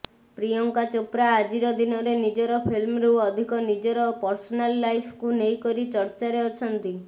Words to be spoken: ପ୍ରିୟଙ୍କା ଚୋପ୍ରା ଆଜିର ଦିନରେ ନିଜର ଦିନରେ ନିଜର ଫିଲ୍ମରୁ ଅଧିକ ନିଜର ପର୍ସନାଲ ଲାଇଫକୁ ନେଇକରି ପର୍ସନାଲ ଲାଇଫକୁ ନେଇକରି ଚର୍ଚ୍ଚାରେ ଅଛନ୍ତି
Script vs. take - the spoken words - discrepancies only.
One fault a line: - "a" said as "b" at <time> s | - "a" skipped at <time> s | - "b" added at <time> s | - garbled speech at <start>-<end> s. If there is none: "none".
- "ଦିନରେ ନିଜର" skipped at 2.6 s
- "ପର୍ସନାଲ ଲାଇଫକୁ ନେଇକରି" skipped at 5.9 s